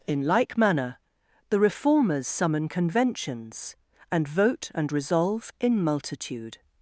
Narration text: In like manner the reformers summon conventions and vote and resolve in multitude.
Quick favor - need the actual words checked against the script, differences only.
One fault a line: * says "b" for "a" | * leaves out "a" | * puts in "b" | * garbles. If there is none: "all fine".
all fine